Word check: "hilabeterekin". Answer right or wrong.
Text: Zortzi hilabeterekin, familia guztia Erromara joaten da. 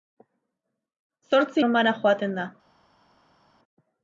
wrong